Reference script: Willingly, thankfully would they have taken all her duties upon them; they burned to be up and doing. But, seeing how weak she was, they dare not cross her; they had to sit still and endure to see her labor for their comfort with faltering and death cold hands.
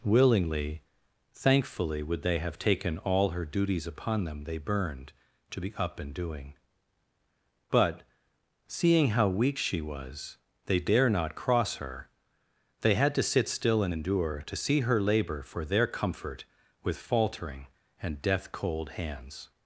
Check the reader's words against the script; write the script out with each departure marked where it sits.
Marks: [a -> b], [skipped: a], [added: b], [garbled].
Willingly, thankfully would they have taken all her duties upon them; they burned to be up and doing. But, seeing how weak she was, they dare not cross her; they had to sit still and endure to see her labor for their comfort with faltering and death cold hands.